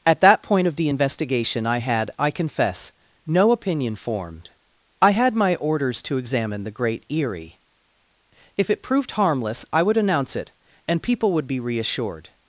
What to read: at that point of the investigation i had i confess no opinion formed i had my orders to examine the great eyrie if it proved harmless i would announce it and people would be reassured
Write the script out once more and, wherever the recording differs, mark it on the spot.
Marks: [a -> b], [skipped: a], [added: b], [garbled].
at that point of the investigation i had i confess no opinion formed i had my orders to examine the great eyrie if it proved harmless i would announce it and people would be reassured